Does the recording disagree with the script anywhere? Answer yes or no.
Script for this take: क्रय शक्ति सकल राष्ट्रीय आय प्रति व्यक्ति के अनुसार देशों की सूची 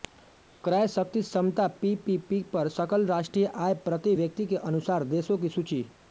yes